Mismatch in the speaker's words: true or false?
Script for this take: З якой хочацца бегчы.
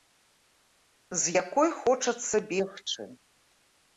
false